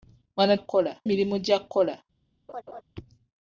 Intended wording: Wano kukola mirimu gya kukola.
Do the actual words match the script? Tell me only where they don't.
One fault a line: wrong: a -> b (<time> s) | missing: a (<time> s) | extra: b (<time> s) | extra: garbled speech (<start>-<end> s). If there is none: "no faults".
no faults